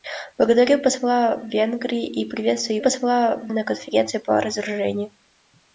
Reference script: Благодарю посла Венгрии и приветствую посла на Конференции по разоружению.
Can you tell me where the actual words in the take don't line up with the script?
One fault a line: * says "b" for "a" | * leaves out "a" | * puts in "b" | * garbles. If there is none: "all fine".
all fine